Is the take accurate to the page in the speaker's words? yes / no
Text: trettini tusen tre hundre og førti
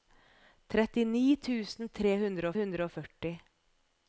no